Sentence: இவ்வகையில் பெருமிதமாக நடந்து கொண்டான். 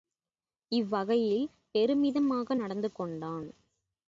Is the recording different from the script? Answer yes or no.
no